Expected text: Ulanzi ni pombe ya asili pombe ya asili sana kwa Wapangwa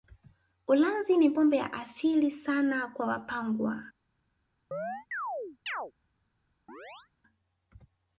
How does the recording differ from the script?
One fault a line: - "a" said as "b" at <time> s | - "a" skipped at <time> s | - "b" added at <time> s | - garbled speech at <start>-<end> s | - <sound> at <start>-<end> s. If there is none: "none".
- "pombe ya asili" skipped at 2.3 s
- chirp at 4.7-5.9 s
- chirp at 6.7-7.1 s